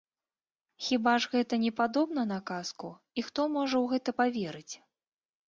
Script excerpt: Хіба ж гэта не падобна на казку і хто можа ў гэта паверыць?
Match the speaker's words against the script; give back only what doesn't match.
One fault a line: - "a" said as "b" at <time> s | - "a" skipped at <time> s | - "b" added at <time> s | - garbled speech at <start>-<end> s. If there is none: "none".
none